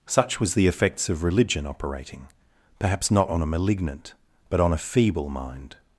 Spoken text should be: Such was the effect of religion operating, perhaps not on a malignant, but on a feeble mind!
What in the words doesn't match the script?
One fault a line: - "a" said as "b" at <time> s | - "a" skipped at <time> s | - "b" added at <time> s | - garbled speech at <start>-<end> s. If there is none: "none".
- "effect" said as "effects" at 0.7 s